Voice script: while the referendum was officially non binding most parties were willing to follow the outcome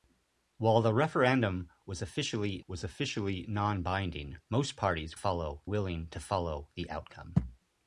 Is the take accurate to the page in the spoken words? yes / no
no